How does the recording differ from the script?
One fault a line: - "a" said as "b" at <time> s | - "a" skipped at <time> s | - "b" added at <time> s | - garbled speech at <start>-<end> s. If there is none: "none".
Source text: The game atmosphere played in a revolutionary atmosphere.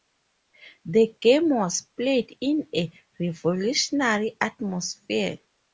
- "atmosphere" said as "was" at 1.5 s